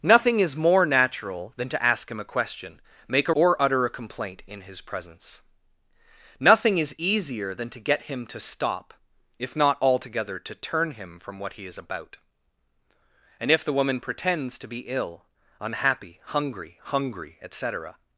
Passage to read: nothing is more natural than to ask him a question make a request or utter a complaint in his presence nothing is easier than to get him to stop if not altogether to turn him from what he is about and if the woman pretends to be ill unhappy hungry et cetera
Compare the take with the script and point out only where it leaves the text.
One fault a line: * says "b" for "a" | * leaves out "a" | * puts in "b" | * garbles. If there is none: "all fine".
* leaves out "request"
* puts in "hungry"